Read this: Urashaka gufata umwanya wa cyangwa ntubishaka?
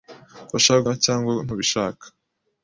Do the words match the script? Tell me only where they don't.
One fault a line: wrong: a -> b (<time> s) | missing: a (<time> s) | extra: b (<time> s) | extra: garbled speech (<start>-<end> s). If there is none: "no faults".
missing: gufata umwanya (0.8 s)